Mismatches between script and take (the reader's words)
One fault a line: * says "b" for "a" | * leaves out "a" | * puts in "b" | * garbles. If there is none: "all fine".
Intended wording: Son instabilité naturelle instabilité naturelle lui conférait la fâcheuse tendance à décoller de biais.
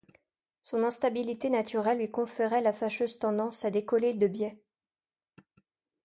* leaves out "instabilité naturelle"